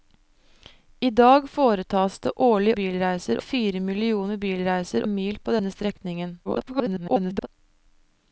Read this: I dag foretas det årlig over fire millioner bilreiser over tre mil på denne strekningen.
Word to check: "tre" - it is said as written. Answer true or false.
false